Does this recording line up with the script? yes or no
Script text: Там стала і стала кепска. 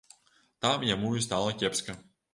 no